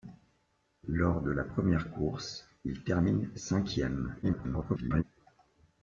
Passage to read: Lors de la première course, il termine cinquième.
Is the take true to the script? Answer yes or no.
no